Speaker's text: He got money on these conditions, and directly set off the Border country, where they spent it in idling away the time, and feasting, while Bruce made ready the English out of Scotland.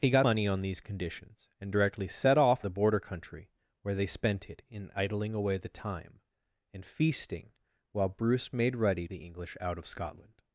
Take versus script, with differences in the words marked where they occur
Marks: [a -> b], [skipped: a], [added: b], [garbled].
He got money on these conditions, and directly set off the Border country, where they spent it in idling away the time, and feasting, while Bruce made ready the English out of Scotland.